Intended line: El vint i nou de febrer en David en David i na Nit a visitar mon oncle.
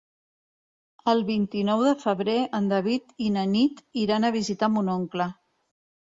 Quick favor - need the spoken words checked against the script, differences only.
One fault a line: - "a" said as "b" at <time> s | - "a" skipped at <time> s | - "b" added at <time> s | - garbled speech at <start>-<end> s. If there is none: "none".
- "en David" skipped at 3.1 s
- "iran" added at 4.0 s